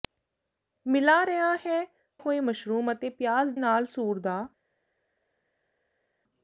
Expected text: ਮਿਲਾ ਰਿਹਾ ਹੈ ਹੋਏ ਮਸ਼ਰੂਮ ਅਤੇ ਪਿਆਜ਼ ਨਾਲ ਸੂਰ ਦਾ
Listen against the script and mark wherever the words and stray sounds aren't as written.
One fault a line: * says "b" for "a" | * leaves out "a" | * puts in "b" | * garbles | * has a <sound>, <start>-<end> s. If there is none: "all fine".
all fine